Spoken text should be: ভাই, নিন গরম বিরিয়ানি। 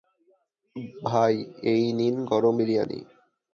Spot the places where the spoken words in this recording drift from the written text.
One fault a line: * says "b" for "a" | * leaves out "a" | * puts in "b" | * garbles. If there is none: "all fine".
* puts in "এই"